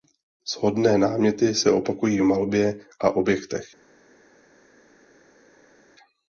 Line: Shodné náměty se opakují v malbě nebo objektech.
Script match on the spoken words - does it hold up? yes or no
no